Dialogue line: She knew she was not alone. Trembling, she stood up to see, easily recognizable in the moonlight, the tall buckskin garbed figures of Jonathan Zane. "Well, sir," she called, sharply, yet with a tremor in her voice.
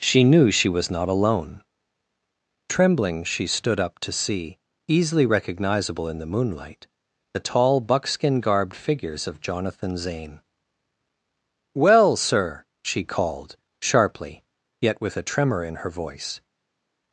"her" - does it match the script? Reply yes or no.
yes